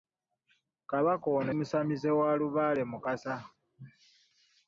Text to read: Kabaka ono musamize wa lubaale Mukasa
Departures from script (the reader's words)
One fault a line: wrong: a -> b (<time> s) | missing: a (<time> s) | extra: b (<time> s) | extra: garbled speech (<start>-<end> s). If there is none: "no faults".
no faults